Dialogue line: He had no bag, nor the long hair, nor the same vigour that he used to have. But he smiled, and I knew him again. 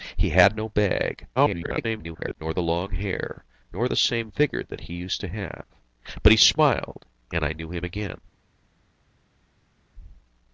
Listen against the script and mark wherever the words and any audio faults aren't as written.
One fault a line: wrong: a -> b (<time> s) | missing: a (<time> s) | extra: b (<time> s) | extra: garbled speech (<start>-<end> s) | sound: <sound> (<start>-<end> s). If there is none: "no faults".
extra: garbled speech (1.4-2.4 s)